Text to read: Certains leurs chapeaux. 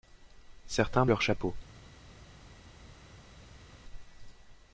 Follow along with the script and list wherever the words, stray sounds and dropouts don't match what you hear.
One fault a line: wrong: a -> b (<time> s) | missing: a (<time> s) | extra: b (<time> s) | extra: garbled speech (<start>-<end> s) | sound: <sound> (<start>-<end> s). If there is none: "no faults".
no faults